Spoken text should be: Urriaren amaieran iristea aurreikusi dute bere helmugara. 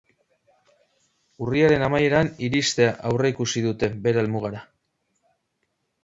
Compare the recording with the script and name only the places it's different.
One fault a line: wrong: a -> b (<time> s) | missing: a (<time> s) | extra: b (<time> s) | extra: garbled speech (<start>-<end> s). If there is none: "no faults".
no faults